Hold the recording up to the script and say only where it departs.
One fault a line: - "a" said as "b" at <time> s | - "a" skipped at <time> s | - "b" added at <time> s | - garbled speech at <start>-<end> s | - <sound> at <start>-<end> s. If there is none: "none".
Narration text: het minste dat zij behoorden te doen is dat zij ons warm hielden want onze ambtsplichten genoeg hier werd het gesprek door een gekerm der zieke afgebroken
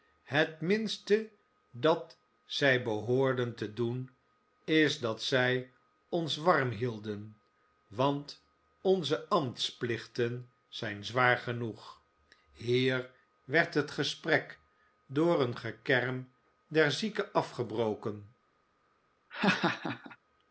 - "zijn zwaar" added at 10.7 s
- laugh at 19.3-20.2 s